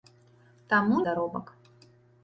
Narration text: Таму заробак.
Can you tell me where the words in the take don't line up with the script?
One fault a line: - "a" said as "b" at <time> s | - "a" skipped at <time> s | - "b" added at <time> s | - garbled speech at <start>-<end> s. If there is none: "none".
none